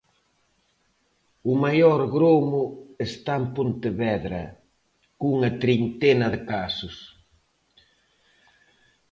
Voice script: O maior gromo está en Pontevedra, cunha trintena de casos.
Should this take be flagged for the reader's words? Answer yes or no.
no